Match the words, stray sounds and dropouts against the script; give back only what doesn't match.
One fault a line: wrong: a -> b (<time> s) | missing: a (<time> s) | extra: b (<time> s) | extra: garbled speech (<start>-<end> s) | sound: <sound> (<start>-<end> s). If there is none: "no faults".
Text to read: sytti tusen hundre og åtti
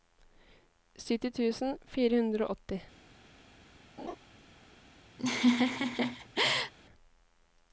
extra: fire (2.0 s)
sound: laugh (4.0-4.2 s)
sound: laugh (5.2-6.7 s)